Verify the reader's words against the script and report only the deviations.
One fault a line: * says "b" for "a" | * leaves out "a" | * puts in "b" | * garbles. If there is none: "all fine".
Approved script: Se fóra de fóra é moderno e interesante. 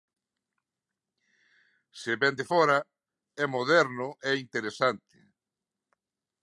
* says "vén" for "fóra"